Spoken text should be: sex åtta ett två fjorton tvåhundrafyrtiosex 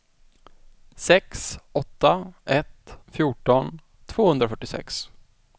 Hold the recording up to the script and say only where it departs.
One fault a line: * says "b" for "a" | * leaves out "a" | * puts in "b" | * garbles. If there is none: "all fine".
* leaves out "två"